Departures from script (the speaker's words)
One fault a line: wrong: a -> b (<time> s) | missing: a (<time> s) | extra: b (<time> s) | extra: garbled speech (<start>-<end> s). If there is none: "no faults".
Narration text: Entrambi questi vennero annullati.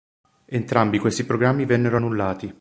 extra: programmi (1.2 s)